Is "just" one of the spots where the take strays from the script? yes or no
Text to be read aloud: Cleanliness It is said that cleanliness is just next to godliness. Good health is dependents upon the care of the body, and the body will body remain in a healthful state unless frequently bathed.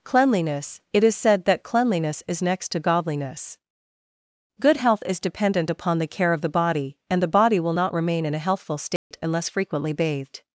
yes